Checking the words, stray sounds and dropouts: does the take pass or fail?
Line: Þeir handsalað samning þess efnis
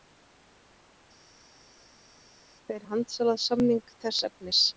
pass